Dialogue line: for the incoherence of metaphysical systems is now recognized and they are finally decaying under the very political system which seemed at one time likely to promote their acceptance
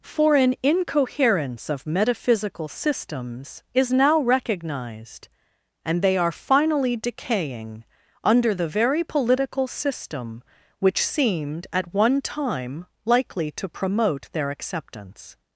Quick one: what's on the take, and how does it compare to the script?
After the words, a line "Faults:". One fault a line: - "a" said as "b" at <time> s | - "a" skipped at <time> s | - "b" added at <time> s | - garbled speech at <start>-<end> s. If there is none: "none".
for an incoherence of metaphysical systems is now recognized and they are finally decaying under the very political system which seemed at one time likely to promote their acceptance
Faults:
- "the" said as "an" at 0.3 s